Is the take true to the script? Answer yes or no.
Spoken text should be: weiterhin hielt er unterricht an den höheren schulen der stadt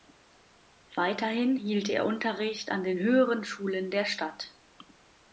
yes